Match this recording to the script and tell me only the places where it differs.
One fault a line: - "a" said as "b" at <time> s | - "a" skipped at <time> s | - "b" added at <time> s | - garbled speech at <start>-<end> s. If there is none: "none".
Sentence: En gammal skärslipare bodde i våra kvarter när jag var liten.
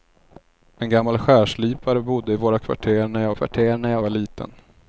- "kvarter när jag" added at 3.3 s